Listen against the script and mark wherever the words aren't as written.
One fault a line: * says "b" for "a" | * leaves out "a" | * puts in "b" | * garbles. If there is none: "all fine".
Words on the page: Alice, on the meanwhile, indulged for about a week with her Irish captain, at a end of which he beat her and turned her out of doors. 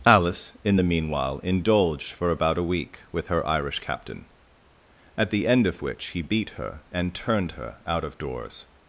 * says "in" for "on"
* says "the" for "a"